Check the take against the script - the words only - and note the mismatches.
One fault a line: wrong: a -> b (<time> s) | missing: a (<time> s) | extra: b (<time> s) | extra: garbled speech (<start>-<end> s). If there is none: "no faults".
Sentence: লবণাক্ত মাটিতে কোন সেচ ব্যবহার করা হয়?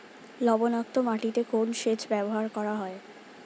no faults